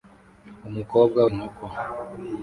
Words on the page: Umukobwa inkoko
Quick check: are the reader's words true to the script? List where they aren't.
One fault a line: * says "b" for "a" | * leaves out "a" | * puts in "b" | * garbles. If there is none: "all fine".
all fine